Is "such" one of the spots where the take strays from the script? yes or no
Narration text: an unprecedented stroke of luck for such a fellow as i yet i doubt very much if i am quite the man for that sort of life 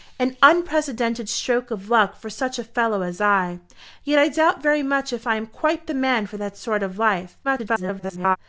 no